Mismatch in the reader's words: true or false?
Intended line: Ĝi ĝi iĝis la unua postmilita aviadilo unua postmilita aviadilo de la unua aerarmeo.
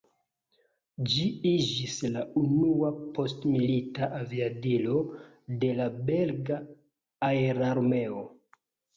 true